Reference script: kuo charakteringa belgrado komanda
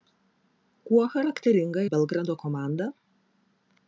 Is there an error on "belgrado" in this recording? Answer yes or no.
no